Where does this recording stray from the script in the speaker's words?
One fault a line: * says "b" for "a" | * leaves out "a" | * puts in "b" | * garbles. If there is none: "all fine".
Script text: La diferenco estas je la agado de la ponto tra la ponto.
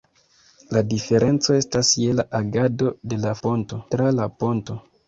all fine